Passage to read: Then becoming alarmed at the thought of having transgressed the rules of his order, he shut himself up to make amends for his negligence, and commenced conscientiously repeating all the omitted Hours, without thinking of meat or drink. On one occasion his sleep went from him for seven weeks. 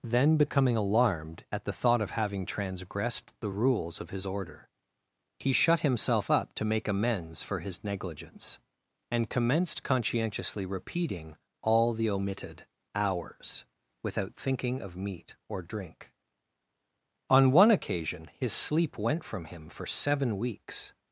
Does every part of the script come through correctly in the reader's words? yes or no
yes